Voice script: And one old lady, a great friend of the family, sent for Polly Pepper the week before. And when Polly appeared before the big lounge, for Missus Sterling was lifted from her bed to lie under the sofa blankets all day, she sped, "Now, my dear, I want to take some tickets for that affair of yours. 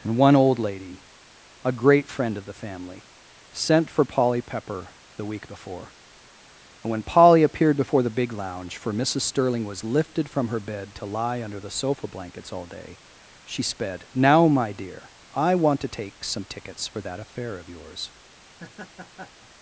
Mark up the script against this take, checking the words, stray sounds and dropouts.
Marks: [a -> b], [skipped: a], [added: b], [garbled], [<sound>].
And one old lady, a great friend of the family, sent for Polly Pepper the week before. And when Polly appeared before the big lounge, for Missus Sterling was lifted from her bed to lie under the sofa blankets all day, she sped, "Now, my dear, I want to take some tickets for that affair of yours. [laugh]